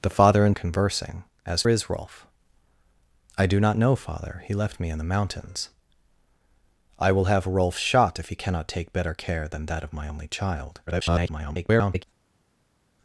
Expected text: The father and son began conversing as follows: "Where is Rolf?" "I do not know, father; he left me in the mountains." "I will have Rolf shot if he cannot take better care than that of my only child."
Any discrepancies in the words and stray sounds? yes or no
yes